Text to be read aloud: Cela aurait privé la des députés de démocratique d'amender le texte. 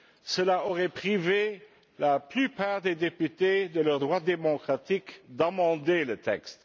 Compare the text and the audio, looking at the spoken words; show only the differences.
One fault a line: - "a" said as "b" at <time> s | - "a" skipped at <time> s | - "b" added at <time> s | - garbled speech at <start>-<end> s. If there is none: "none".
- "plupart" added at 2.2 s
- "leur droit" added at 3.8 s